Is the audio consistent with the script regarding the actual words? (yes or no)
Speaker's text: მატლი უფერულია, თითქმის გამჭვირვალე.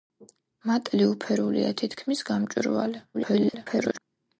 no